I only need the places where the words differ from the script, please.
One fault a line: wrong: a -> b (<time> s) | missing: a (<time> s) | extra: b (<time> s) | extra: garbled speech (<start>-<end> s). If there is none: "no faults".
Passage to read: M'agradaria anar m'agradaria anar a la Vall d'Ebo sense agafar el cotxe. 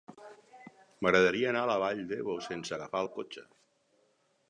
missing: m'agradaria anar (1.6 s)